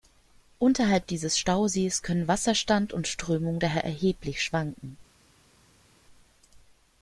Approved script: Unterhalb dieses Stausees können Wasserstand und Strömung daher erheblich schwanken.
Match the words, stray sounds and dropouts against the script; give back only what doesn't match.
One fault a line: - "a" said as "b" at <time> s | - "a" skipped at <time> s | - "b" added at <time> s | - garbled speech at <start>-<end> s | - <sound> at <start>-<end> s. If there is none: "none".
none